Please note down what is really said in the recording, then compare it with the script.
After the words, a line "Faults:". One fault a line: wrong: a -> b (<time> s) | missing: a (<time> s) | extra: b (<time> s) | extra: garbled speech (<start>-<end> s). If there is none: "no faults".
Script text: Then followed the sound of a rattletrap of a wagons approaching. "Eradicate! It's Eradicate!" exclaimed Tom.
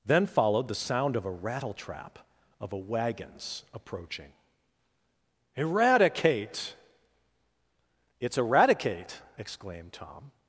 Then followed the sound of a rattletrap of a wagons approaching. "Eradicate! It's Eradicate!" exclaimed Tom.
Faults:
no faults